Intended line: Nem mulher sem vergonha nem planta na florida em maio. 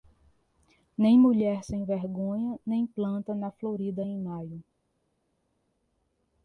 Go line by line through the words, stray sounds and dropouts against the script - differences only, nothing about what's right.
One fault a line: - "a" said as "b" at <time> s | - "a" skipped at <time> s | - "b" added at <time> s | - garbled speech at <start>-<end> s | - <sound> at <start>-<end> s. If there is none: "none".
none